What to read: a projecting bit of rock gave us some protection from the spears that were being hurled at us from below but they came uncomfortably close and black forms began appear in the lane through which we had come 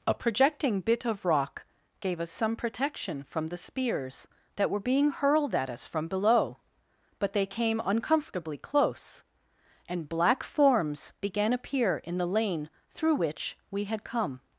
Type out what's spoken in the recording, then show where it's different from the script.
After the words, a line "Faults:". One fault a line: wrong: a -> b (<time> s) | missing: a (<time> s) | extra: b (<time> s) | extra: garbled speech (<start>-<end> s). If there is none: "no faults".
a projecting bit of rock gave us some protection from the spears that were being hurled at us from below but they came uncomfortably close and black forms began appear in the lane through which we had come
Faults:
no faults